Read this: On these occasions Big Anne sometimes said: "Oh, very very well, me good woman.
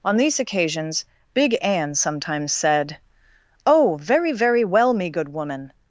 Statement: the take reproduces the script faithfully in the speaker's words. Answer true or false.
true